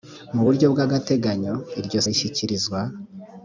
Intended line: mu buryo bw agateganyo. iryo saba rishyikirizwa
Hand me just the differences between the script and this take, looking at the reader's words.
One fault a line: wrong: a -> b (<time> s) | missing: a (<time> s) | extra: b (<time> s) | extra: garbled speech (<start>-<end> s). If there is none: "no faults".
missing: saba (2.0 s)